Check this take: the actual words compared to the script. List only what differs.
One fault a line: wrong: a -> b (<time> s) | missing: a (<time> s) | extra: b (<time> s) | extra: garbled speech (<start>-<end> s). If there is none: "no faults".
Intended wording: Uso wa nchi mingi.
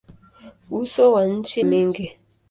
no faults